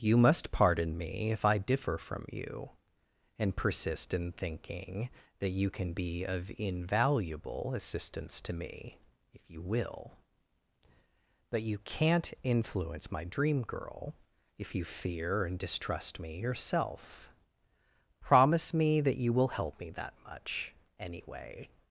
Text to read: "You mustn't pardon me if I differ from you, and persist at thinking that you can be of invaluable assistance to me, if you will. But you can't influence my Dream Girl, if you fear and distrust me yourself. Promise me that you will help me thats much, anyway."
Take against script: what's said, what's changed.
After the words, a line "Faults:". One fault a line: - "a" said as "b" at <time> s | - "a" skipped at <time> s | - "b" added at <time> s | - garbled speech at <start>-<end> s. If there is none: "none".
"You must pardon me if I differ from you, and persist in thinking that you can be of invaluable assistance to me, if you will. But you can't influence my Dream Girl, if you fear and distrust me yourself. Promise me that you will help me that much, anyway."
Faults:
- "mustn't" said as "must" at 0.2 s
- "at" said as "in" at 4.2 s
- "thats" said as "that" at 19.9 s